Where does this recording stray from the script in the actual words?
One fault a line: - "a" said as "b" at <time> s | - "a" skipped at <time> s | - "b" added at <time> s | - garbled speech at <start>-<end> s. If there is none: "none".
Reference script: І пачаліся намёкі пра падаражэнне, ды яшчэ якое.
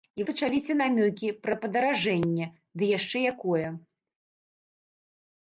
none